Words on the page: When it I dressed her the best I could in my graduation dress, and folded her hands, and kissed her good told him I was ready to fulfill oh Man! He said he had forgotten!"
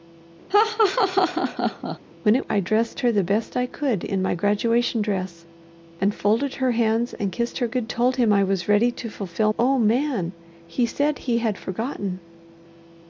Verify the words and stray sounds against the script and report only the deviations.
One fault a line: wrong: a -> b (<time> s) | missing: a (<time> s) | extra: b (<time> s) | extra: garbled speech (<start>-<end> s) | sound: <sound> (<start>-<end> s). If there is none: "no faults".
sound: laugh (0.5-2.0 s)